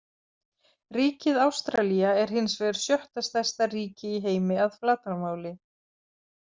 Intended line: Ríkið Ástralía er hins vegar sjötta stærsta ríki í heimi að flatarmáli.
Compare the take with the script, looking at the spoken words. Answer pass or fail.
pass